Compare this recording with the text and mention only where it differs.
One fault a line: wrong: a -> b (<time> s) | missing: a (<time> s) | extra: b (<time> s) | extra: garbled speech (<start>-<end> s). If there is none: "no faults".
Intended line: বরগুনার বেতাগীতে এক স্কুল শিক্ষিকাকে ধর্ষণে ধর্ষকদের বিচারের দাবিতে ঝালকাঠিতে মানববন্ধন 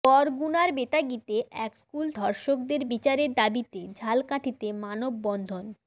missing: শিক্ষিকাকে ধর্ষণে (2.1 s)